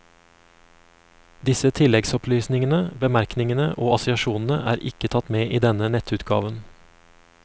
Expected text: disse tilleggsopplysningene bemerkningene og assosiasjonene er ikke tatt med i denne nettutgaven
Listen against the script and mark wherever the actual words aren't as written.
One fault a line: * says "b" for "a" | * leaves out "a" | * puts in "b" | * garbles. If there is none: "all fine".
all fine